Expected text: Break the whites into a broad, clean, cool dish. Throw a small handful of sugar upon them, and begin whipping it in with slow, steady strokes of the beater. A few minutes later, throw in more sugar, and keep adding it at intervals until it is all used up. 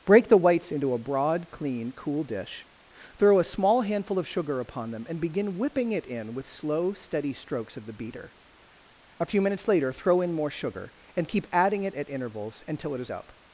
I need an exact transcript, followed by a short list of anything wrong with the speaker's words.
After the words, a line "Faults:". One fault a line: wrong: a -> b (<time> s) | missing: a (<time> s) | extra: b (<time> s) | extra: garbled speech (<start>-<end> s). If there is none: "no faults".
Break the whites into a broad, clean, cool dish. Throw a small handful of sugar upon them, and begin whipping it in with slow, steady strokes of the beater. A few minutes later, throw in more sugar, and keep adding it at intervals until it is up.
Faults:
missing: all used (13.1 s)